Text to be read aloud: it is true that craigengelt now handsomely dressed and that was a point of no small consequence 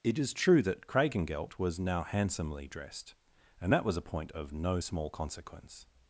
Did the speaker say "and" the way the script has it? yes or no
yes